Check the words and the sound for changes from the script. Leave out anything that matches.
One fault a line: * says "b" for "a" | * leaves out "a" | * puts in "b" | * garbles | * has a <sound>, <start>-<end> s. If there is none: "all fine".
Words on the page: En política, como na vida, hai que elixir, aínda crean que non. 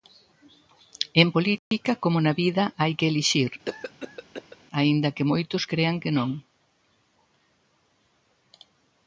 * has a dropout, 1.6-1.7 s
* has a cough, 3.7-4.6 s
* puts in "que moitos"